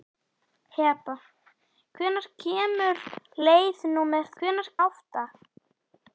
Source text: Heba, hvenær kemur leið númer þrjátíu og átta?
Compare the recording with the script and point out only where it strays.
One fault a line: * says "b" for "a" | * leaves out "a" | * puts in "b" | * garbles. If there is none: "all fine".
* says "hvenær" for "þrjátíu"